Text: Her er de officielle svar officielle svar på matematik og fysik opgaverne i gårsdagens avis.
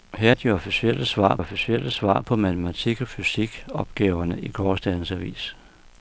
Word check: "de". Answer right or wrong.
right